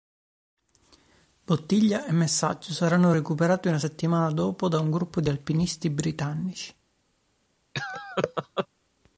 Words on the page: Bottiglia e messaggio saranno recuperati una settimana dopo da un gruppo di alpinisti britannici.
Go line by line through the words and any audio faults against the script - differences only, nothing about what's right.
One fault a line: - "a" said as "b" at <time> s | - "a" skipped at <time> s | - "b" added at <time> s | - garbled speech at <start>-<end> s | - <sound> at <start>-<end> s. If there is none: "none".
- laugh at 7.7-8.7 s